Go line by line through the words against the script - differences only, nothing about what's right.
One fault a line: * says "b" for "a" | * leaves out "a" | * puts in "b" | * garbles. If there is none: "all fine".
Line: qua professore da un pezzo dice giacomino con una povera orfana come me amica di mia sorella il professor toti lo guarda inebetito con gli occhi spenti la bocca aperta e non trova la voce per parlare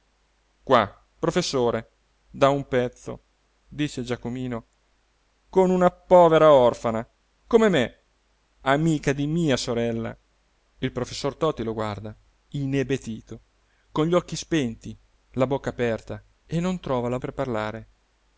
* leaves out "voce"